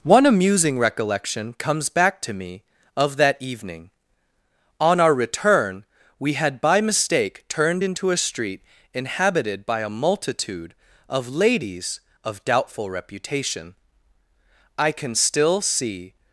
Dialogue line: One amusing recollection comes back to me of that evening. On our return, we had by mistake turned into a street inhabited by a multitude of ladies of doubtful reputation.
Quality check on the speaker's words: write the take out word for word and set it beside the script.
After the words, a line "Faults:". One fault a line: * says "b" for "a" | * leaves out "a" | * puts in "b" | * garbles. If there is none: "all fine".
One amusing recollection comes back to me of that evening. On our return, we had by mistake turned into a street inhabited by a multitude of ladies of doubtful reputation. I can still see
Faults:
* puts in "I can still see"